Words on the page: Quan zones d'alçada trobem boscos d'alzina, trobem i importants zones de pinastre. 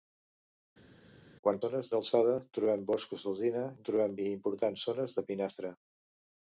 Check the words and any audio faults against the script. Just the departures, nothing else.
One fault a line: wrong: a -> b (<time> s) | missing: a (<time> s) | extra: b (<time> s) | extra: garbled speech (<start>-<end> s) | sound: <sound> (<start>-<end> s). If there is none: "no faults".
no faults